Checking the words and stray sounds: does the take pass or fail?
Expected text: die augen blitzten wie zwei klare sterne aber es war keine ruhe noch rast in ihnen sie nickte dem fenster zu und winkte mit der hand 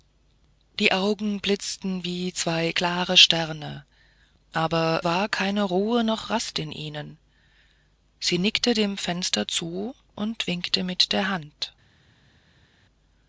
fail